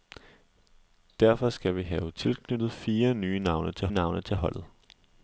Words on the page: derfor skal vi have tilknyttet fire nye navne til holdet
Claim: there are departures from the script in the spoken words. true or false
true